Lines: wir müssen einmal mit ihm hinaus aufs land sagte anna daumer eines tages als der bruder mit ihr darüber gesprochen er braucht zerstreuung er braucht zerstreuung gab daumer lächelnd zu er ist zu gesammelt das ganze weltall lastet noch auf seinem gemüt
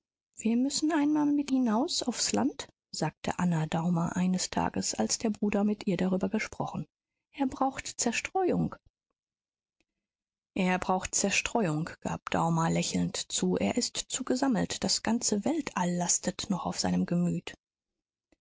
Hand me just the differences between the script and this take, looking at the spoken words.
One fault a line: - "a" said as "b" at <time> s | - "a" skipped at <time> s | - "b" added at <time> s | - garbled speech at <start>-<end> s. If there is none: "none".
- "ihm" skipped at 1.5 s